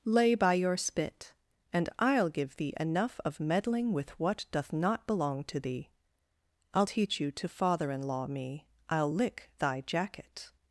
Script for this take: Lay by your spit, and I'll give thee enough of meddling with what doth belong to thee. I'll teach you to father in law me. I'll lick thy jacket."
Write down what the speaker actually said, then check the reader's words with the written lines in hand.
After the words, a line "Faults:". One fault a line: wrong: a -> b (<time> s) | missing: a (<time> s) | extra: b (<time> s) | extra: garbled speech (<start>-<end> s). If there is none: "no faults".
Lay by your spit, and I'll give thee enough of meddling with what doth not belong to thee. I'll teach you to father in law me. I'll lick thy jacket."
Faults:
extra: not (4.7 s)